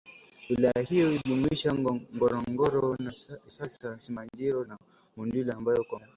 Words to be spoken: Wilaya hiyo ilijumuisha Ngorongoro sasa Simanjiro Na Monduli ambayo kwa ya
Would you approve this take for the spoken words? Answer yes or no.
yes